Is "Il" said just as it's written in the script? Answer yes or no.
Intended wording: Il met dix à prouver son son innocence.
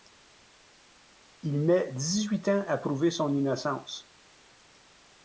yes